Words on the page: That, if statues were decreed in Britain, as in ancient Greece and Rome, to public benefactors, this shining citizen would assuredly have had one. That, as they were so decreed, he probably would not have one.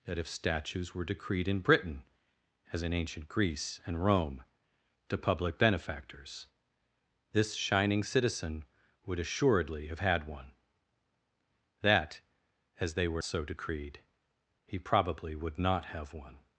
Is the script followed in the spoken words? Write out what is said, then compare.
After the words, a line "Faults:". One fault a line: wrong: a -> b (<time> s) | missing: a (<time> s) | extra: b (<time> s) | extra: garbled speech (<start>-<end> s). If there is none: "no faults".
That, if statues were decreed in Britain, as in ancient Greece and Rome, to public benefactors, this shining citizen would assuredly have had one. That, as they were so decreed, he probably would not have one.
Faults:
no faults